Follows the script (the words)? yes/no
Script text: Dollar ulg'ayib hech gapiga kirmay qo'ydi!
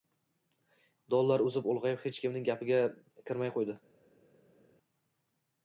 no